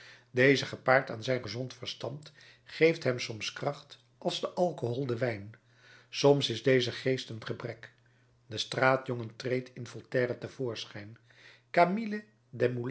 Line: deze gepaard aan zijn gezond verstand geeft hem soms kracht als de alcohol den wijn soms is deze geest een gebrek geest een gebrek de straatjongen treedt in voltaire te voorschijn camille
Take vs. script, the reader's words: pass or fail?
fail